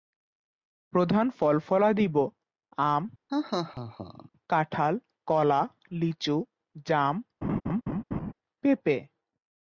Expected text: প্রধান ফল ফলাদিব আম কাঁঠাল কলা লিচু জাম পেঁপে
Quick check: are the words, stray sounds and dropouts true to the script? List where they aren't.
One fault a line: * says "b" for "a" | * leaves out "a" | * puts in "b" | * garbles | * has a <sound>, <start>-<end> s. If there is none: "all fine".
* has a laugh, 3.3-4.3 s
* has a laugh, 7.4-8.3 s